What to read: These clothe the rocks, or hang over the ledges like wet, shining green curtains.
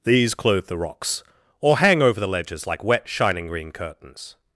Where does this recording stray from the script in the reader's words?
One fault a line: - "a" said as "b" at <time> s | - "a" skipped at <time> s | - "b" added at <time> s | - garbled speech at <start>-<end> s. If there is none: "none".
none